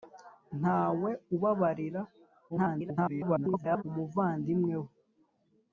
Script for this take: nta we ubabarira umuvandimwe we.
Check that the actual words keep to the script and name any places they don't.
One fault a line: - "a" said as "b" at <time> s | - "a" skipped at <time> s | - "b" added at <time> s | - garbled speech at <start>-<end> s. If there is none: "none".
- garbled speech at 2.5-3.8 s